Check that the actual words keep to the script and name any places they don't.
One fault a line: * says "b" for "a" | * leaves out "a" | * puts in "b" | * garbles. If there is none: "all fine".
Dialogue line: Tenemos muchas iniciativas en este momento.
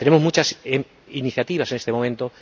all fine